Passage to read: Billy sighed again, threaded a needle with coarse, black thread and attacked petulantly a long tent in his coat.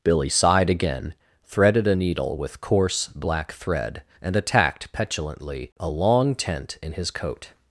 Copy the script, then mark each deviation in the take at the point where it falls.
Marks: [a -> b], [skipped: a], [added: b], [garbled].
Billy sighed again, threaded a needle with coarse, black thread and attacked petulantly a long tent in his coat.